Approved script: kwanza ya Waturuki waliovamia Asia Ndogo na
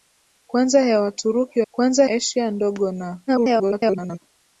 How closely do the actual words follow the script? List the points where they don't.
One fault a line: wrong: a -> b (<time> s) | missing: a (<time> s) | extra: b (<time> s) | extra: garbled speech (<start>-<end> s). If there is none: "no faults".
wrong: waliovamia -> kwanza (1.7 s)
extra: garbled speech (3.3-4.2 s)